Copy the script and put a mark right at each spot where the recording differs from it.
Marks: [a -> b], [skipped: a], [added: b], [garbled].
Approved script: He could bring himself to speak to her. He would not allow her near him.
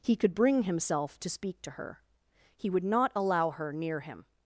He could bring himself to speak to her. He would not allow her near him.